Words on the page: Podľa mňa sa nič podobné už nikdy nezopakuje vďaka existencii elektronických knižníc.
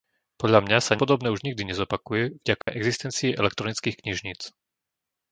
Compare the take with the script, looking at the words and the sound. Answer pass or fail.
fail